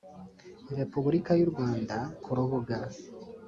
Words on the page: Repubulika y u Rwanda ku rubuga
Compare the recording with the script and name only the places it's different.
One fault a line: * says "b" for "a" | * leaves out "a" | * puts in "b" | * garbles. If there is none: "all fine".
all fine